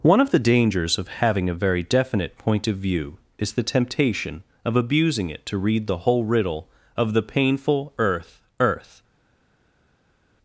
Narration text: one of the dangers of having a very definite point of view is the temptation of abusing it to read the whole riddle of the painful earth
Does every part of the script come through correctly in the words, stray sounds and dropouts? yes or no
no